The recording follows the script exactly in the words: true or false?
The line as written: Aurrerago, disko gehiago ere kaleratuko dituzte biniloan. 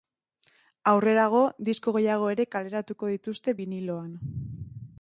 true